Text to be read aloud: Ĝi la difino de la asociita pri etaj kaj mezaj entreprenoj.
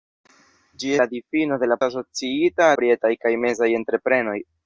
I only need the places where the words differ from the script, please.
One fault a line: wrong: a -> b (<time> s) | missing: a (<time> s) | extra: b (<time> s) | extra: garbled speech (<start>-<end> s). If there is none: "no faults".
no faults